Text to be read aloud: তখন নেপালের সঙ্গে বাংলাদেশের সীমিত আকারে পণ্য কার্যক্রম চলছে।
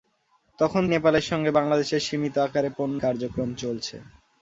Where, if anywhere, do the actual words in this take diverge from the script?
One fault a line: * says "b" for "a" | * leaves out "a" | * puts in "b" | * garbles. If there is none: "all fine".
all fine